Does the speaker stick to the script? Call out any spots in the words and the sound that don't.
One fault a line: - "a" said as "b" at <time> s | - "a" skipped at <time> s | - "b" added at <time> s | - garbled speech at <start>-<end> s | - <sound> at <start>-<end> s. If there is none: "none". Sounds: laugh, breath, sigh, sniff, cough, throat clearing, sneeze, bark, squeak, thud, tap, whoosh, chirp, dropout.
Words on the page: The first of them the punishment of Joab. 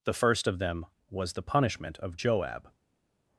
- "was" added at 1.1 s